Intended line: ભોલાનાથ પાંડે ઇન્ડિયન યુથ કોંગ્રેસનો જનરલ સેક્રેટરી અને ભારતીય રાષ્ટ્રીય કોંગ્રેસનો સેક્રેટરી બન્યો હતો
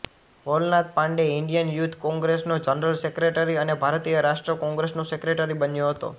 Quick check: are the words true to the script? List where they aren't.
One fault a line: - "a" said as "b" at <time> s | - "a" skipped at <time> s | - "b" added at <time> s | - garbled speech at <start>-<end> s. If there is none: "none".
none